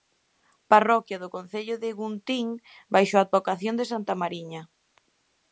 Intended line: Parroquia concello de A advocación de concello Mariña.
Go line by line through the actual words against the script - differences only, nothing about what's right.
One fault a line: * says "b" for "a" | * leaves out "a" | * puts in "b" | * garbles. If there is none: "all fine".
* puts in "do"
* puts in "Guntín baixo"
* says "santa" for "concello"